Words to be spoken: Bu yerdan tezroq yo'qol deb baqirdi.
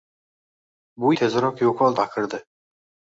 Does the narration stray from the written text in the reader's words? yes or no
yes